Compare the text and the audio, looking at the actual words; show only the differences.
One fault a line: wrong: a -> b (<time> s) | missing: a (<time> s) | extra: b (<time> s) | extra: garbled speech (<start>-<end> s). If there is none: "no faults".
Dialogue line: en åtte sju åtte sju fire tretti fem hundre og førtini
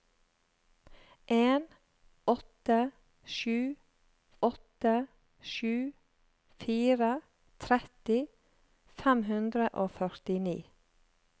no faults